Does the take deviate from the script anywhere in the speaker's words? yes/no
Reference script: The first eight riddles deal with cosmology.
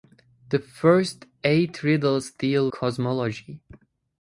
yes